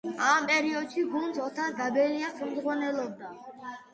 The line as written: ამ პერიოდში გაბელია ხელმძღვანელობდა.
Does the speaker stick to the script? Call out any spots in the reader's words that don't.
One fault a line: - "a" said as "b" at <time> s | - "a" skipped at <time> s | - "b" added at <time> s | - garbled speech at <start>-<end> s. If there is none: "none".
- "გუნდს ოთარ" added at 1.1 s